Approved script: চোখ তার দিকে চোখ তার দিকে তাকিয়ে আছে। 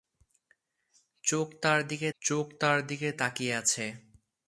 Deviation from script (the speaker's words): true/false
false